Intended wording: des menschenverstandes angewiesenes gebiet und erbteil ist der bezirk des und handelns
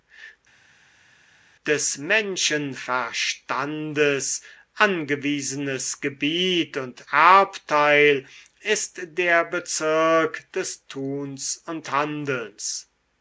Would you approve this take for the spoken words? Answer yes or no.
no